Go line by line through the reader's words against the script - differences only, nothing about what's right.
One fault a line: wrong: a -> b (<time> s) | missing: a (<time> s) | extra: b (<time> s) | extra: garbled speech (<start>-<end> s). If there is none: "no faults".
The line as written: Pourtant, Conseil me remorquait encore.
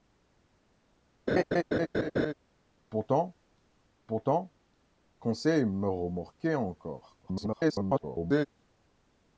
extra: pourtant (4.1 s)
extra: garbled speech (7.2-8.5 s)